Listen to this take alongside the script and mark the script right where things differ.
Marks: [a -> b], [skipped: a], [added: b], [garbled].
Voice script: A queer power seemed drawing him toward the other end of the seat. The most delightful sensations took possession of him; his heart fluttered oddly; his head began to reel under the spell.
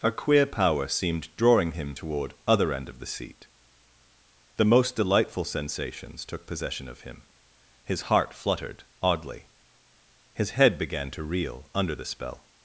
A queer power seemed drawing him toward [skipped: the] other end of the seat. The most delightful sensations took possession of him; his heart fluttered oddly; his head began to reel under the spell.